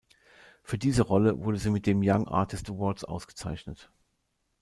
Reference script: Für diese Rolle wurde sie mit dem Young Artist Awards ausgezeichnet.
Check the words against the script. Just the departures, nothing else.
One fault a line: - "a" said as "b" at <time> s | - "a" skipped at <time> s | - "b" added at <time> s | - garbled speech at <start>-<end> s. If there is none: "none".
none